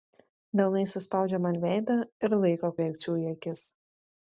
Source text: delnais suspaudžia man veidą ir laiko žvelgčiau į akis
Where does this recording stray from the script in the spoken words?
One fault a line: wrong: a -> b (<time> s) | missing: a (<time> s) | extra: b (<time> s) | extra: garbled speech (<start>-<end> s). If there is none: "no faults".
no faults